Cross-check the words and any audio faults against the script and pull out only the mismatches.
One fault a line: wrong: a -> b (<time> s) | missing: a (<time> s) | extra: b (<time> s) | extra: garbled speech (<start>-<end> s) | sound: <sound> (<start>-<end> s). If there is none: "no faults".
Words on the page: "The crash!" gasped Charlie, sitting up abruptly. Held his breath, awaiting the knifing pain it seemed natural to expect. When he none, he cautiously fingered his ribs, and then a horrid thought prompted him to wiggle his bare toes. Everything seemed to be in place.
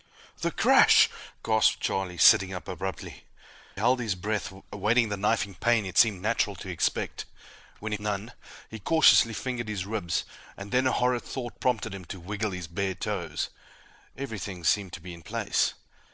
no faults